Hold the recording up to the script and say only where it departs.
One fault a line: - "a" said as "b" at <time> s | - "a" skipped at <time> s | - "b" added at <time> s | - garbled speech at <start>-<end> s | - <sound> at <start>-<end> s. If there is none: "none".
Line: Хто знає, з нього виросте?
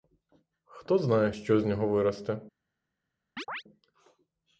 - "що" added at 1.3 s
- chirp at 3.4-3.6 s